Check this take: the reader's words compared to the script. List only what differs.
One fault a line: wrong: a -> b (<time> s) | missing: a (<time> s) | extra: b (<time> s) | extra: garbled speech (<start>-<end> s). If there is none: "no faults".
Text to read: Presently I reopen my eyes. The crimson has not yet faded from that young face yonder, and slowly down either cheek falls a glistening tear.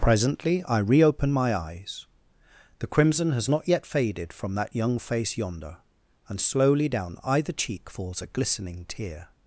no faults